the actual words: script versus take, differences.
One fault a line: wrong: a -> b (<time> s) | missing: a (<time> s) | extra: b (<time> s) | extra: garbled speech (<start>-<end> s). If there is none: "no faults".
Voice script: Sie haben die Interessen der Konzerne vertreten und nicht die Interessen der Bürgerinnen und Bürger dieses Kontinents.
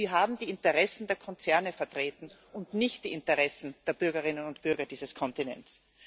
no faults